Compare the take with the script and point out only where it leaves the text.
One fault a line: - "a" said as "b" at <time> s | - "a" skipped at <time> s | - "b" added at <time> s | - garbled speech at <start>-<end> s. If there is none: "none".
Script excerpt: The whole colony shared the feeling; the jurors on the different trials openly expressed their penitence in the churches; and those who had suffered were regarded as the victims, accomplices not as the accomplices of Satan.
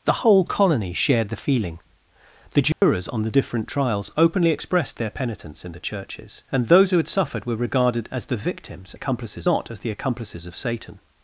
none